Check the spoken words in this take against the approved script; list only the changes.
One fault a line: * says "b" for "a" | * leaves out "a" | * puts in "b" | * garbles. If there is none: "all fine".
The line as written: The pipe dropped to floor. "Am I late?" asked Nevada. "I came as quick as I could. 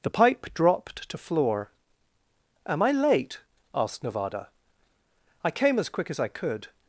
all fine